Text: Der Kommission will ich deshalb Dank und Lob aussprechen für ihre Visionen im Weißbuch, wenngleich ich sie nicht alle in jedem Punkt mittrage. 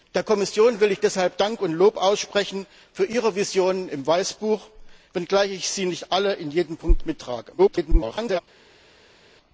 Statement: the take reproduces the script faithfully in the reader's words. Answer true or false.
false